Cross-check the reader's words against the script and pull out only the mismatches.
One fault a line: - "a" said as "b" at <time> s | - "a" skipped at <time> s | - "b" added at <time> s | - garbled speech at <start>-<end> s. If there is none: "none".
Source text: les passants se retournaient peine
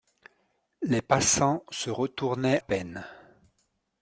none